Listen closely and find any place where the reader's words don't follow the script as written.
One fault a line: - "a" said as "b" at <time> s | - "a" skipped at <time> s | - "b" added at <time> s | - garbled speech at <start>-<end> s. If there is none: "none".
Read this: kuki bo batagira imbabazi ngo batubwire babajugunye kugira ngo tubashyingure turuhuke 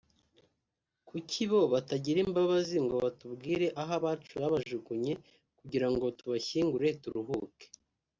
- "aho abacu" added at 3.8 s